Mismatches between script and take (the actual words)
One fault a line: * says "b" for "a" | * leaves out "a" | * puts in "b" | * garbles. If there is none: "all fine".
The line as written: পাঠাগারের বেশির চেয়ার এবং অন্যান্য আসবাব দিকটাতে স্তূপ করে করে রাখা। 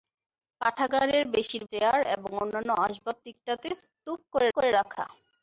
all fine